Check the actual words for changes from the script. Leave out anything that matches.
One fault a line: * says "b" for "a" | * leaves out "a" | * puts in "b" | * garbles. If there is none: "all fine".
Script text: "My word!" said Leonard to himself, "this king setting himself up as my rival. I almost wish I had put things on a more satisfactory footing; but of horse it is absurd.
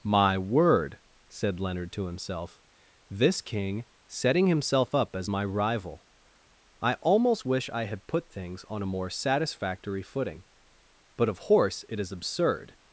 all fine